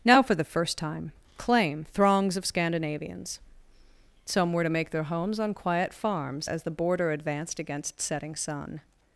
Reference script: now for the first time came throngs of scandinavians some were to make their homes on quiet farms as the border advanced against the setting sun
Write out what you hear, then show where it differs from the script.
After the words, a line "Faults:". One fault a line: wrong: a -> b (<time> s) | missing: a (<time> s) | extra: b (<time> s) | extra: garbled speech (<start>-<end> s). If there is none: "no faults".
now for the first time claim throngs of scandinavians some were to make their homes on quiet farms as the border advanced against setting sun
Faults:
wrong: came -> claim (1.4 s)
missing: the (8.0 s)